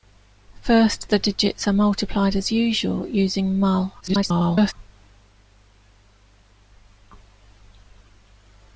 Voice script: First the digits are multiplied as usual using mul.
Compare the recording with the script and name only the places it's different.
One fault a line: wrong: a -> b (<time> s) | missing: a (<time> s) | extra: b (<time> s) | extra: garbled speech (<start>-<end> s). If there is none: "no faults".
extra: garbled speech (4.0-4.7 s)